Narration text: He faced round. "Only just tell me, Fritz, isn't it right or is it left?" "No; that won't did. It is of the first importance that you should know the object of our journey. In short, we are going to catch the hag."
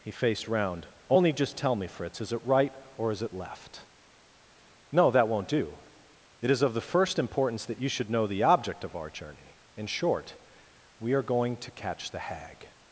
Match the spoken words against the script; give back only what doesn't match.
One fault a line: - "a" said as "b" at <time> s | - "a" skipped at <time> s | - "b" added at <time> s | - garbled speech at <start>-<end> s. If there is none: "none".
- "isn't" said as "is" at 2.2 s
- "did" said as "do" at 5.5 s